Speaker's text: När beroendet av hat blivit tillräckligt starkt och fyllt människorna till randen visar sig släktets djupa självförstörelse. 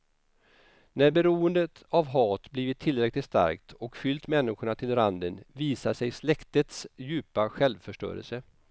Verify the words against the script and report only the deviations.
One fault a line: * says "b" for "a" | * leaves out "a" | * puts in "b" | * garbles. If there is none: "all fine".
all fine